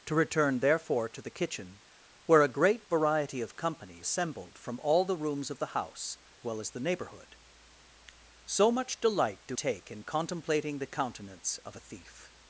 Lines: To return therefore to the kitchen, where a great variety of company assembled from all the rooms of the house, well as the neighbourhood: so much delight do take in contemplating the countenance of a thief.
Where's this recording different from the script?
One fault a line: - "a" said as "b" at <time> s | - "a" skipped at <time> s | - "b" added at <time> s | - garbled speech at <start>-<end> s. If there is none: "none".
none